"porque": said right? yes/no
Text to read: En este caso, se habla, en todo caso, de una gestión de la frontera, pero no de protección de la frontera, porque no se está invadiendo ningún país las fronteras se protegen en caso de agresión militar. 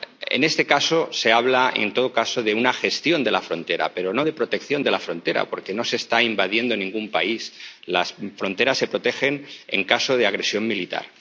yes